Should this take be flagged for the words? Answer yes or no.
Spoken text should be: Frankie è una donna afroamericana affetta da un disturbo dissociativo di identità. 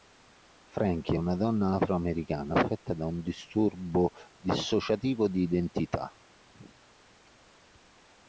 no